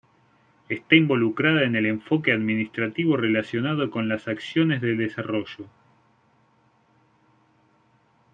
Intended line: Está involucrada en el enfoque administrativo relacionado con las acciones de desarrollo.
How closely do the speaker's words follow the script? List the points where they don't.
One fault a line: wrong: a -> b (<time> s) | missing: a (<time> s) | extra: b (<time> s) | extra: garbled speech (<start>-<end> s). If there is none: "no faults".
no faults